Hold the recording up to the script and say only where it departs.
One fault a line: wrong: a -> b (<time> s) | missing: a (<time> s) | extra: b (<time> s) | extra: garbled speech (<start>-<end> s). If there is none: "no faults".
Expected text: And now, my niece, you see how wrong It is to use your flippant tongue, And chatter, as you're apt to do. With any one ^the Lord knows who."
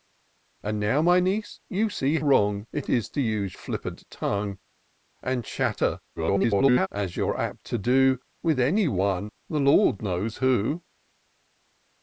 missing: how (2.2 s)
missing: your (3.6 s)
extra: garbled speech (6.2-6.9 s)